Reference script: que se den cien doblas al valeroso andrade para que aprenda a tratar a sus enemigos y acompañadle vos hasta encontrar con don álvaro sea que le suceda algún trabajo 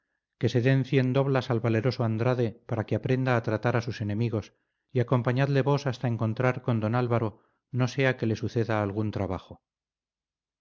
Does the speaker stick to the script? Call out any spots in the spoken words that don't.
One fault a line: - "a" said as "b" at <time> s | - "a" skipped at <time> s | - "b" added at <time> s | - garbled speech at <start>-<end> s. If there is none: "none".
- "no" added at 7.7 s